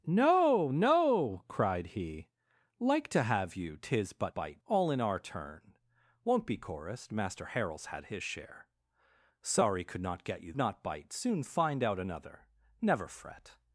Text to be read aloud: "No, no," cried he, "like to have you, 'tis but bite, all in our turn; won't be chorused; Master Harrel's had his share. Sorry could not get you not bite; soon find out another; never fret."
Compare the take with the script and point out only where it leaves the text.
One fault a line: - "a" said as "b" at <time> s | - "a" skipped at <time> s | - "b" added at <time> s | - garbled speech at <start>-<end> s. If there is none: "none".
none